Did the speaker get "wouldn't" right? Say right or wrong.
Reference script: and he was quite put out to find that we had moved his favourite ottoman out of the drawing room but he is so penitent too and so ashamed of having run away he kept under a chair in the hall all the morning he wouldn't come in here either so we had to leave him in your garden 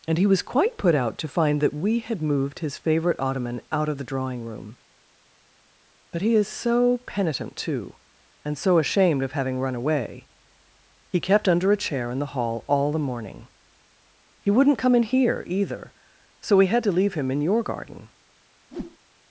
right